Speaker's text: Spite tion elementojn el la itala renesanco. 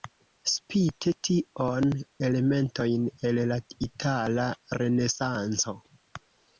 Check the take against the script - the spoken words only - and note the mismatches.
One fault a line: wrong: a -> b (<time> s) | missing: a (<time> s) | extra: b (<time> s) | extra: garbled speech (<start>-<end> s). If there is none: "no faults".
no faults